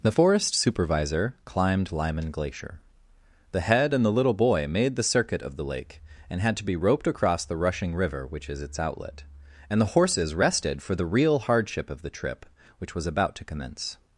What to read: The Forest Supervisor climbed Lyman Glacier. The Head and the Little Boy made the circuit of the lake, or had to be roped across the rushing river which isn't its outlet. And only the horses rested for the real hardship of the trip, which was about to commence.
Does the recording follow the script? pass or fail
fail